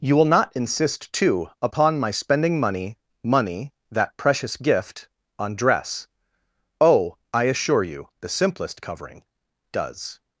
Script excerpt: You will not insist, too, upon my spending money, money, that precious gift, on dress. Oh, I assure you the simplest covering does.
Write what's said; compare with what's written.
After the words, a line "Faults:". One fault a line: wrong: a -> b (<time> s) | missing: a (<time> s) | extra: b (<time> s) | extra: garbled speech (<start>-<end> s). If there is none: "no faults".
You will not insist, too, upon my spending money, money, that precious gift, on dress. Oh, I assure you the simplest covering does.
Faults:
no faults